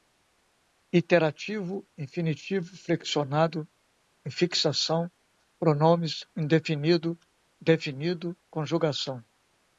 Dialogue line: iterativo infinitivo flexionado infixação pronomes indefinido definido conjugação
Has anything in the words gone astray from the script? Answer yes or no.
no